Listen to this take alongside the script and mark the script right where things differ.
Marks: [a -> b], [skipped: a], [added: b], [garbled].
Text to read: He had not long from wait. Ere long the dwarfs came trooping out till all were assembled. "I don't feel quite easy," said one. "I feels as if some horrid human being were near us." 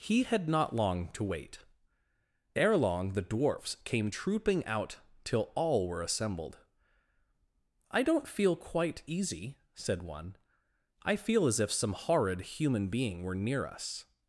He had not long [from -> to] wait. Ere long the dwarfs came trooping out till all were assembled. "I don't feel quite easy," said one. "I [feels -> feel] as if some horrid human being were near us."